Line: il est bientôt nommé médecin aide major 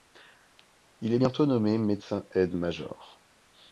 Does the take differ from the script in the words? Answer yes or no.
no